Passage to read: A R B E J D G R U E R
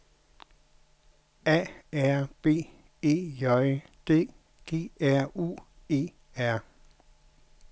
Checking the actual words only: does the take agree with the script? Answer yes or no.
yes